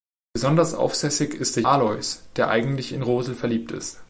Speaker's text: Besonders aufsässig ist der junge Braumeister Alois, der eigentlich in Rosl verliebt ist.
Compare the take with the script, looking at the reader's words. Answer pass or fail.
fail